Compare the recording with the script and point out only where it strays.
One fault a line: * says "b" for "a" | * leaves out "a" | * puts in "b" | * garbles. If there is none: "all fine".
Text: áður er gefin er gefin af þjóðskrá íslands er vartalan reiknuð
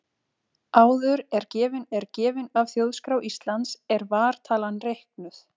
all fine